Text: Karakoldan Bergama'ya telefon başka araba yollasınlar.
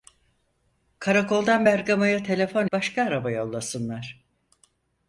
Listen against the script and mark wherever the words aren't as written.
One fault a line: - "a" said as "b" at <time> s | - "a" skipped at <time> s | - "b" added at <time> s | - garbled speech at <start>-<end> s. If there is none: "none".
none